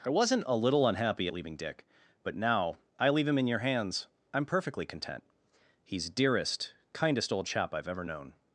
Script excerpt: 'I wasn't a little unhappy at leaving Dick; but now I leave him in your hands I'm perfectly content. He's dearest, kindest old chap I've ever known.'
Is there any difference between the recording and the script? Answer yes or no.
no